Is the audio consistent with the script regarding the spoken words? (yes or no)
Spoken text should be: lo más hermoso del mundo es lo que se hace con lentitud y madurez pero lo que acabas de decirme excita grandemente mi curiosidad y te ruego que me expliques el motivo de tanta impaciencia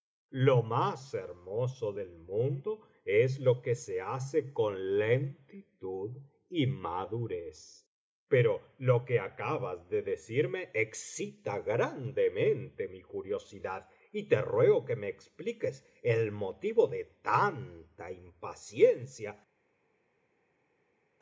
yes